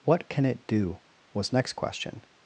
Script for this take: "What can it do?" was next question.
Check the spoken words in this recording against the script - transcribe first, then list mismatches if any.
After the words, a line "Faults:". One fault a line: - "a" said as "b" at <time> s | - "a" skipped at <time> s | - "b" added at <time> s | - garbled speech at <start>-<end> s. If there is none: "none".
"What can it do?" was next question.
Faults:
none